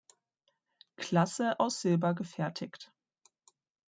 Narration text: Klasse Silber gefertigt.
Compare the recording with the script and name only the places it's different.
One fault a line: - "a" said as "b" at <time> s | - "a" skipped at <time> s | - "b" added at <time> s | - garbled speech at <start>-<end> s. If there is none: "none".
- "aus" added at 1.6 s